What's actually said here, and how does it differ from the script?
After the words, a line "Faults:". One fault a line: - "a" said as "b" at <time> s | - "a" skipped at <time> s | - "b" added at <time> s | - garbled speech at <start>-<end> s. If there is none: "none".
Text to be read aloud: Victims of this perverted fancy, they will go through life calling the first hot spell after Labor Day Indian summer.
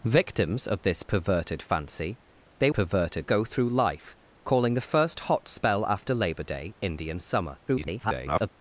Victims of this perverted fancy, they perverted go through life calling the first hot spell after Labor Day Indian summer. [garbled]
Faults:
- "will" said as "perverted" at 2.7 s
- garbled speech at 7.7-8.5 s